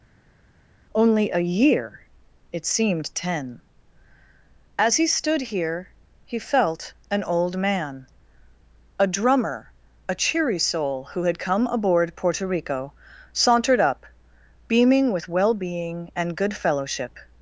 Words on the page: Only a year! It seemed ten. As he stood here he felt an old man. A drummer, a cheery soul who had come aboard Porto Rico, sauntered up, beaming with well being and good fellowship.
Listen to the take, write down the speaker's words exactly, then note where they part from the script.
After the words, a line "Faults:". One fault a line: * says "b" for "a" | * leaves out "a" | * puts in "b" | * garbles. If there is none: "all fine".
Only a year! It seemed ten. As he stood here he felt an old man. A drummer, a cheery soul who had come aboard Porto Rico, sauntered up, beaming with well being and good fellowship.
Faults:
all fine